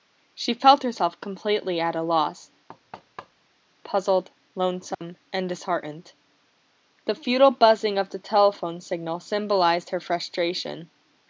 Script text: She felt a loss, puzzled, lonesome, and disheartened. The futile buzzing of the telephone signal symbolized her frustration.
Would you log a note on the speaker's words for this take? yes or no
yes